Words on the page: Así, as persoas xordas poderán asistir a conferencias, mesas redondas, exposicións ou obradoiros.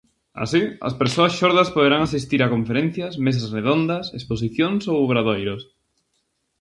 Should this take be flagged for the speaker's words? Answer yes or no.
no